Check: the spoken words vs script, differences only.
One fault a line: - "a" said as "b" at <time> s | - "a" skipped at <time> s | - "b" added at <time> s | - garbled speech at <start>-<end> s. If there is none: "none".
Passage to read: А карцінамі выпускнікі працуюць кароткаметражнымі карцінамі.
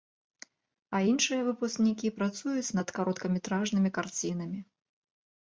- "карцінамі" said as "іншыя" at 1.1 s
- "над" added at 2.8 s